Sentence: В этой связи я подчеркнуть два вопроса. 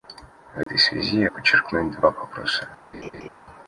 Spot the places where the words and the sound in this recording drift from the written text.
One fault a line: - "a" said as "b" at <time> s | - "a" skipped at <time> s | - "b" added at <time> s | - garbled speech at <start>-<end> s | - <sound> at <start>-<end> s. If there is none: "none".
- dropout at 0.6-0.7 s
- laugh at 2.9-3.3 s